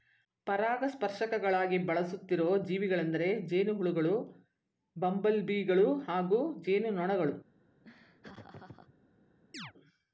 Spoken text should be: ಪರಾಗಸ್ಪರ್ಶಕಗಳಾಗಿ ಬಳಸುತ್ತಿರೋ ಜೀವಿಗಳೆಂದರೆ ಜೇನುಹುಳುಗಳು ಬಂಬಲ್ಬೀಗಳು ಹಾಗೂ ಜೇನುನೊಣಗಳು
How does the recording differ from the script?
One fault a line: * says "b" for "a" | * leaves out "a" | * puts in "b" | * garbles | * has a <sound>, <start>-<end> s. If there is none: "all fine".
* has a laugh, 7.8-8.9 s
* has a chirp, 9.5-9.7 s